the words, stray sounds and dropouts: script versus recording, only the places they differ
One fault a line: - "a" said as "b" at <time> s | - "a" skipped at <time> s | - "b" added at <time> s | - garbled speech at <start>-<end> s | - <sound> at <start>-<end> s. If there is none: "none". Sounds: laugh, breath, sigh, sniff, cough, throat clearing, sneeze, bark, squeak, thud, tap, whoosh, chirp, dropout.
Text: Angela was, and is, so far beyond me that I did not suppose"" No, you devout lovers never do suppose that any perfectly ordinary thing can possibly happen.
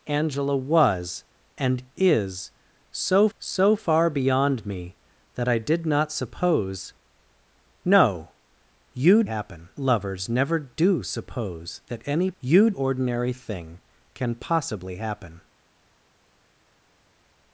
- "so" added at 3.4 s
- "devout" said as "happen" at 9.3 s
- "perfectly" said as "you" at 12.4 s